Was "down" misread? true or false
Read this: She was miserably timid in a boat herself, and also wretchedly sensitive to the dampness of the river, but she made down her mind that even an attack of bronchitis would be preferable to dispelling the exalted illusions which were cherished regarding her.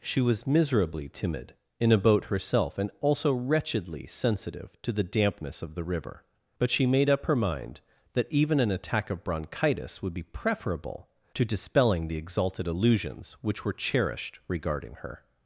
true